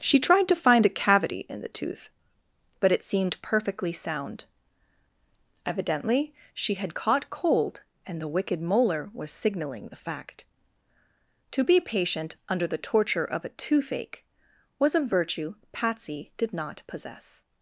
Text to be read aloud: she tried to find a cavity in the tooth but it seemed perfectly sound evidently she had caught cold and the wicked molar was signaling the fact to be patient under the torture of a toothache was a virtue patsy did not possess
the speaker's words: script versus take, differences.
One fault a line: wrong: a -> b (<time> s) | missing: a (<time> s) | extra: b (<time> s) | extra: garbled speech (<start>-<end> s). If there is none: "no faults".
no faults